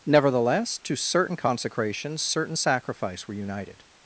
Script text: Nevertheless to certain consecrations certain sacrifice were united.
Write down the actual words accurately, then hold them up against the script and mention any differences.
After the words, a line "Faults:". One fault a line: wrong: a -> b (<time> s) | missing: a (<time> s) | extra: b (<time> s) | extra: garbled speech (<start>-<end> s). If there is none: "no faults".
Nevertheless to certain consecrations certain sacrifice were united.
Faults:
no faults